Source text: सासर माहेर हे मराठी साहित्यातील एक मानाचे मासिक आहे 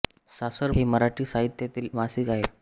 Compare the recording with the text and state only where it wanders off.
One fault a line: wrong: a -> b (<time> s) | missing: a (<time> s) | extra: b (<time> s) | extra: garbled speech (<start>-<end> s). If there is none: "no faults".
missing: माहेर (0.7 s)
missing: एक मानाचे (1.9 s)